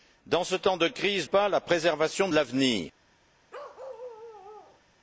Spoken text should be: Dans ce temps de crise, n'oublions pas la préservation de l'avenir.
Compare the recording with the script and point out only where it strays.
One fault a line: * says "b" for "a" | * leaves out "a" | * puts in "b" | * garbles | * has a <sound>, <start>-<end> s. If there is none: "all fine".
* leaves out "n'oublions"
* has a bark, 3.5-4.8 s